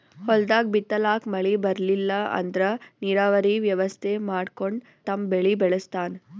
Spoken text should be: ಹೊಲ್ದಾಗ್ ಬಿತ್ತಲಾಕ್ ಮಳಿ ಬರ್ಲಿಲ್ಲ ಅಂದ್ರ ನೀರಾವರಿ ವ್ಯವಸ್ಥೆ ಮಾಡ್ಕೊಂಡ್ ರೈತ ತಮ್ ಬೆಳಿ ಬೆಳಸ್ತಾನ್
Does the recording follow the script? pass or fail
fail